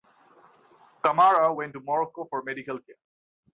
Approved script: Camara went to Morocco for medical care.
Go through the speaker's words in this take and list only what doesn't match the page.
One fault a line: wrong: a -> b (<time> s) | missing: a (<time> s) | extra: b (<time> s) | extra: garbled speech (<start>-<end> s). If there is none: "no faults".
no faults